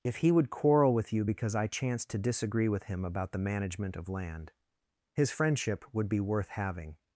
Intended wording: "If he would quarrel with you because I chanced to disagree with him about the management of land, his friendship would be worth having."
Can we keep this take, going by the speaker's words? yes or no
yes